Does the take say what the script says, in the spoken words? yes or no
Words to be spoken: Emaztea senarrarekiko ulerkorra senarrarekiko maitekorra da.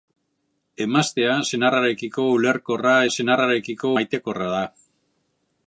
yes